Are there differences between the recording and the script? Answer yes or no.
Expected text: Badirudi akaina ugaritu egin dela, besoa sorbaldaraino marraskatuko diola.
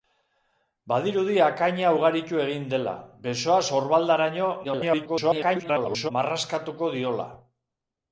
yes